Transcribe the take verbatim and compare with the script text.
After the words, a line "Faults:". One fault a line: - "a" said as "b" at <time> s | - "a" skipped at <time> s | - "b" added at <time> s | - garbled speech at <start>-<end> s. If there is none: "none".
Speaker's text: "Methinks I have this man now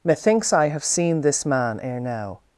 "Methinks I have seen this man ere now
Faults:
- "seen" added at 0.8 s
- "ere" added at 1.8 s